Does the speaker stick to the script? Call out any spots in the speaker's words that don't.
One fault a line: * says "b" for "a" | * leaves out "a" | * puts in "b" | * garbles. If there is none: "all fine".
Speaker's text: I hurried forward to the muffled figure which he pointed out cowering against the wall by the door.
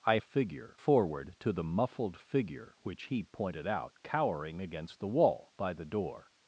* says "figure" for "hurried"